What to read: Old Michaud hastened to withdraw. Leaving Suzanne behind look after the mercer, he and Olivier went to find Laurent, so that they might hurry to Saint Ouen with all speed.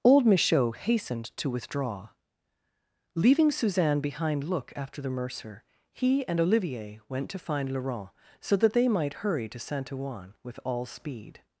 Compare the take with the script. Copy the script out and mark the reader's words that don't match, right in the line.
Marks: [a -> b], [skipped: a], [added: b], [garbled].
Old Michaud hastened to withdraw. Leaving Suzanne behind look after the mercer, he and Olivier went to find Laurent, so that they might hurry to Saint Ouen with all speed.